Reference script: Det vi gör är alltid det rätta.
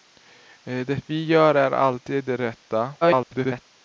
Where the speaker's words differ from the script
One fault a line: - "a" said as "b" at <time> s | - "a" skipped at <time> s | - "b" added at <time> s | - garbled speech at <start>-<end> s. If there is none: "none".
- garbled speech at 3.0-3.7 s